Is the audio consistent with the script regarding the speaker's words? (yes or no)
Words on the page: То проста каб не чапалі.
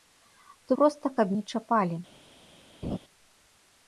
yes